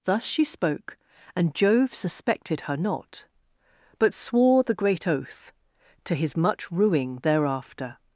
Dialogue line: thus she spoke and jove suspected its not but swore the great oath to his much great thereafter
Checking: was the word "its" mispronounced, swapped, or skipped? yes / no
yes